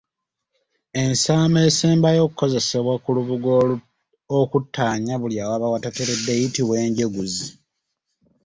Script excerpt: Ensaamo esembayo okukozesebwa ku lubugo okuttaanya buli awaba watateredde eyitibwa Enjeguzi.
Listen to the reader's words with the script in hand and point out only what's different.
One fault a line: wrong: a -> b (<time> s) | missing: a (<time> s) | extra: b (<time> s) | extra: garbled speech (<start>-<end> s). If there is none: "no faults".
no faults